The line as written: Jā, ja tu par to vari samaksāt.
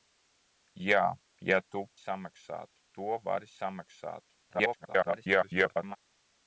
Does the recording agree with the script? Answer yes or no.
no